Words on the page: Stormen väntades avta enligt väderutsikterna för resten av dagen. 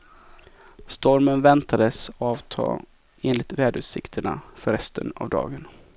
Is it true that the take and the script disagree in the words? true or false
false